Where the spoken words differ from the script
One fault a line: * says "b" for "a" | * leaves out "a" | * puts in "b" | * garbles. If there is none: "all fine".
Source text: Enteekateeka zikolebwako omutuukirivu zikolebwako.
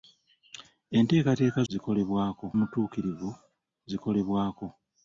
all fine